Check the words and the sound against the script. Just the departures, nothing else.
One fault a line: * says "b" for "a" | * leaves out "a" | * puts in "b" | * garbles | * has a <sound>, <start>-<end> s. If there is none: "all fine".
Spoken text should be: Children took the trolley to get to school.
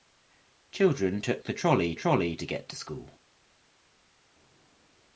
* puts in "trolley"